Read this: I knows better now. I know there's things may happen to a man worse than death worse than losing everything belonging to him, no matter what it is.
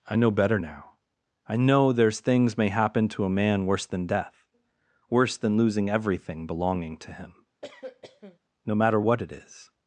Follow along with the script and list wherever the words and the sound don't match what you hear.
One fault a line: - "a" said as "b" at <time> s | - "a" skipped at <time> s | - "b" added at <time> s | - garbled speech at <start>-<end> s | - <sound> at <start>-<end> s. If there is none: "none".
- "knows" said as "know" at 0.2 s
- cough at 7.6-8.4 s